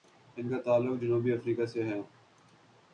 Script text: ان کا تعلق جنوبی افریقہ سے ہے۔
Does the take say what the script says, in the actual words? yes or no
yes